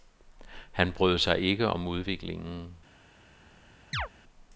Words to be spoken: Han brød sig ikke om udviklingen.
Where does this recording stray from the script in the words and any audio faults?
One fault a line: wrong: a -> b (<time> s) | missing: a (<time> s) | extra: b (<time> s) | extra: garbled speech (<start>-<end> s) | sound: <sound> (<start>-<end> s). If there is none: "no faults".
sound: chirp (3.9-4.1 s)